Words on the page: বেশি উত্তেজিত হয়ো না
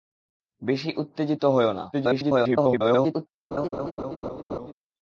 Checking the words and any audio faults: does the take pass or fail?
fail